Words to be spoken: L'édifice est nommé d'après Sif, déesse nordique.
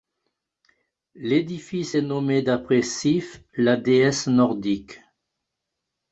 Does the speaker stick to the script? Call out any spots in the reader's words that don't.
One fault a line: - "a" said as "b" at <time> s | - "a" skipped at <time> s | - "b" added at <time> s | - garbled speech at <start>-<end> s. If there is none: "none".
- "la" added at 3.6 s